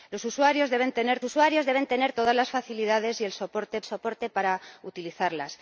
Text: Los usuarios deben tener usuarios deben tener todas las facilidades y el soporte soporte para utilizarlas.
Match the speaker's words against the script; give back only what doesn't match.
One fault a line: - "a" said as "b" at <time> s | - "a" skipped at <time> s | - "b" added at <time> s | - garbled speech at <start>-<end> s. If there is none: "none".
none